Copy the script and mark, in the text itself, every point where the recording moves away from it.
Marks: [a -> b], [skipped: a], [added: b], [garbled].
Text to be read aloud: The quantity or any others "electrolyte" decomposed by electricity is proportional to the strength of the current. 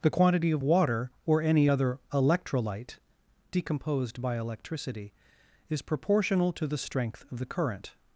The quantity [added: of water] or any [others -> other] "electrolyte" decomposed by electricity is proportional to the strength of the current.